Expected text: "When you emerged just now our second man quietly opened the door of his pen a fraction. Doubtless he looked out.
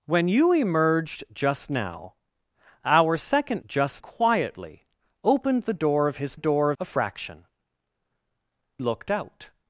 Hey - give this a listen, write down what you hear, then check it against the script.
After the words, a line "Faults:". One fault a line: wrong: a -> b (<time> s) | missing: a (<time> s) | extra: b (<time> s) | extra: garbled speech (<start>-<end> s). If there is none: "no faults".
"When you emerged just now our second just quietly opened the door of his door a fraction. Looked out.
Faults:
wrong: man -> just (3.6 s)
wrong: pen -> door (6.3 s)
missing: Doubtless he (7.5 s)